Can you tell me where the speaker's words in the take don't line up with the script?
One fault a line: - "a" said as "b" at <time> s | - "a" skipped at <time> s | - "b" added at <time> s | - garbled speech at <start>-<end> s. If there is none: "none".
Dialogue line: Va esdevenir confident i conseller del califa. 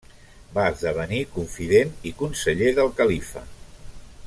none